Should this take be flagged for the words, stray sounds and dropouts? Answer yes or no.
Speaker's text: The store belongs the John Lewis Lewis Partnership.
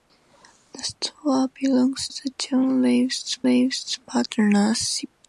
no